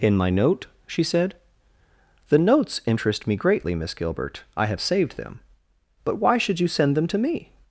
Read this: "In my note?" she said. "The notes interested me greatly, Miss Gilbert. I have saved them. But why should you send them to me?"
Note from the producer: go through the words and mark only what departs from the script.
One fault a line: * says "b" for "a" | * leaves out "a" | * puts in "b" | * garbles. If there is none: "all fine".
* says "interest" for "interested"